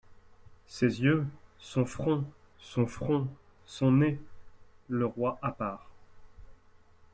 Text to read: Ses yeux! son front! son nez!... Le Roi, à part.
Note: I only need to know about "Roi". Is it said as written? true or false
true